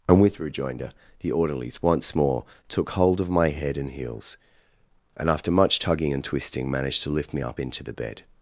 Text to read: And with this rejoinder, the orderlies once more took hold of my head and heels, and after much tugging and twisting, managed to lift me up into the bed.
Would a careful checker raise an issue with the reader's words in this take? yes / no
yes